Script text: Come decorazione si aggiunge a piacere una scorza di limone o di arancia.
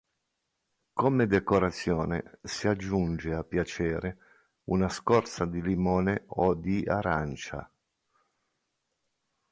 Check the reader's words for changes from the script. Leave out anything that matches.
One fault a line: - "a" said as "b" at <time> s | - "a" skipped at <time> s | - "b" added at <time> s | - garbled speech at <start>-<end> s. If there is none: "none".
none